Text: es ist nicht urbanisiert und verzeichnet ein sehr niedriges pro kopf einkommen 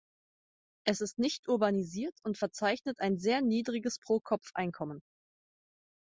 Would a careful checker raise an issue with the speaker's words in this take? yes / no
no